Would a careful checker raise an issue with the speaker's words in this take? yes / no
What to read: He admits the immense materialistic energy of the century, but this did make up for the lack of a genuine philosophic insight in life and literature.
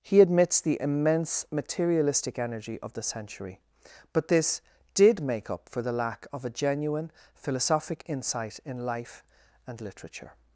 no